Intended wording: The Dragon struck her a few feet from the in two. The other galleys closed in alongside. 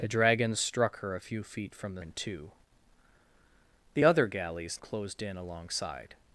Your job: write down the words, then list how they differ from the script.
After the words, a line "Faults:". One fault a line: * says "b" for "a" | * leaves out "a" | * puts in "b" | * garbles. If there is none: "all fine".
The Dragon struck her a few feet from the in two. The other galleys closed in alongside.
Faults:
all fine